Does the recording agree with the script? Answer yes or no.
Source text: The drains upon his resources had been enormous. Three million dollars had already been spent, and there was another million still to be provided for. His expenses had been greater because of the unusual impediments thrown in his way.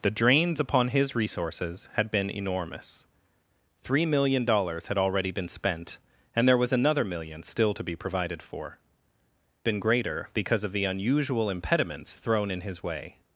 no